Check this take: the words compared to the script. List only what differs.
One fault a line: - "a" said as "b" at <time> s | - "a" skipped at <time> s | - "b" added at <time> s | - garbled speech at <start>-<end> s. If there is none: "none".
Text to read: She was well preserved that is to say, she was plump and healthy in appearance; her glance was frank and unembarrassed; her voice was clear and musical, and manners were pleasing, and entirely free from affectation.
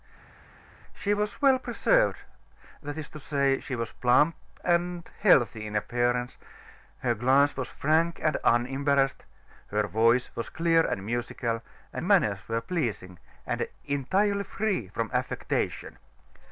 none